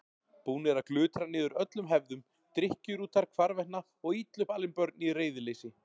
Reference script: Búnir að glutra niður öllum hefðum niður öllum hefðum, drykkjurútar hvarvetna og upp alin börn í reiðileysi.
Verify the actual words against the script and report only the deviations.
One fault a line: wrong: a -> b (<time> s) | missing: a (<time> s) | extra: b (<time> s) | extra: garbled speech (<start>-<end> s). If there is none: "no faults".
missing: niður öllum hefðum (2.2 s)
extra: illa (4.2 s)